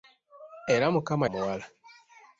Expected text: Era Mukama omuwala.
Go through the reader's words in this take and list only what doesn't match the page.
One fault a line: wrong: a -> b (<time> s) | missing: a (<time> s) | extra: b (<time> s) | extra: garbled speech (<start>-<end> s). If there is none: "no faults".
no faults